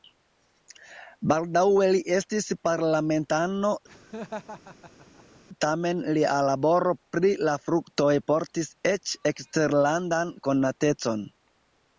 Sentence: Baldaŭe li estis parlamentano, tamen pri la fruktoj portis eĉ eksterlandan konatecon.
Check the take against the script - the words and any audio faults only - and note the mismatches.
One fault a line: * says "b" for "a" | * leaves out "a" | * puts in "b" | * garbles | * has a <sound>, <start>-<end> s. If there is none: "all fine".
* has a laugh, 3.9-5.4 s
* puts in "lia laboro"